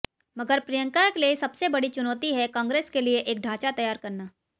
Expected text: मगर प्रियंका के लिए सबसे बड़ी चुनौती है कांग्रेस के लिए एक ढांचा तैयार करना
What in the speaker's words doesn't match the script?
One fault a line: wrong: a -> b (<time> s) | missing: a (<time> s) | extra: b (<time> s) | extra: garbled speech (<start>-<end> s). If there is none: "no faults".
no faults